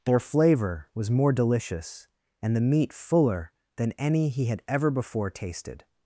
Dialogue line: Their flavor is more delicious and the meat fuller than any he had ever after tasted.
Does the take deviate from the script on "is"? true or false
true